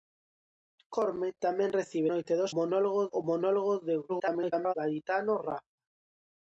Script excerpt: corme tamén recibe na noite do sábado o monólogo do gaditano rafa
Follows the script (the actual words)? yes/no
no